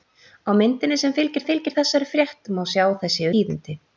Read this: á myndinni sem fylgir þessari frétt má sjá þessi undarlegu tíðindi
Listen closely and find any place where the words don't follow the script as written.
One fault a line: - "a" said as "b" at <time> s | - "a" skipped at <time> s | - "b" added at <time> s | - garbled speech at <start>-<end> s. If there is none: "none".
- "fylgir" added at 1.5 s
- "undarlegu" skipped at 3.3 s